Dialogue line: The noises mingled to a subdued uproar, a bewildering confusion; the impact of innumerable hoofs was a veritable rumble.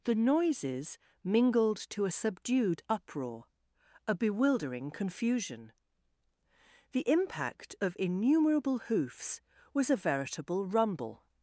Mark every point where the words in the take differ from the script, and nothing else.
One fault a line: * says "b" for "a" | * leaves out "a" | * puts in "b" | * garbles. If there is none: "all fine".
all fine